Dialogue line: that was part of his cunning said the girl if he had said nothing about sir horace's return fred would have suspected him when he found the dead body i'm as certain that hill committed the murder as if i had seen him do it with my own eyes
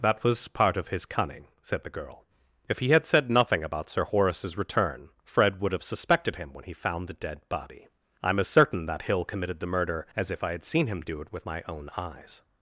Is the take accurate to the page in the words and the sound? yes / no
yes